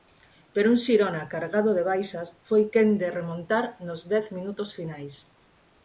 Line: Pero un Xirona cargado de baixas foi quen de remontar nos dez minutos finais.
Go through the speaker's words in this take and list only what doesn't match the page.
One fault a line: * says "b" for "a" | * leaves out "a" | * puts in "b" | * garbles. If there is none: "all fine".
all fine